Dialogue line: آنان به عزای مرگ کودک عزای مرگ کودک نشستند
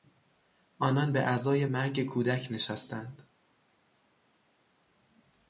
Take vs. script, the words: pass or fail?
fail